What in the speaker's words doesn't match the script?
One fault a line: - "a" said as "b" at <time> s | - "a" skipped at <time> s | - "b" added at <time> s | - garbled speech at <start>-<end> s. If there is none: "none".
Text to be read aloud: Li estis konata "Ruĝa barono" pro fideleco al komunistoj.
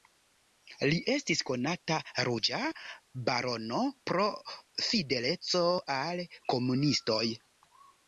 none